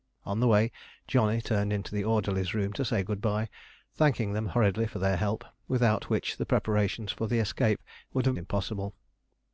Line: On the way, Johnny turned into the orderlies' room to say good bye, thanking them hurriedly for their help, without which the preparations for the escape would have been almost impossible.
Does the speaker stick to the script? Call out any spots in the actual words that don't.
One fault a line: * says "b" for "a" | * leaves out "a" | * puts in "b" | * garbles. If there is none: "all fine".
* leaves out "been almost"